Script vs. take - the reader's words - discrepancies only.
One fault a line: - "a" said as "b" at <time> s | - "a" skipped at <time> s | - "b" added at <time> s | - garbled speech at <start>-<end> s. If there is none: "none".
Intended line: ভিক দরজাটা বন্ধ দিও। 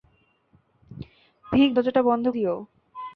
none